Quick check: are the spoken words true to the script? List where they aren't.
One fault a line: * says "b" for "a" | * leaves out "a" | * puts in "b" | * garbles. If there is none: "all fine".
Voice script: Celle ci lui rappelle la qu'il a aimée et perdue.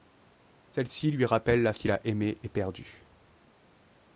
all fine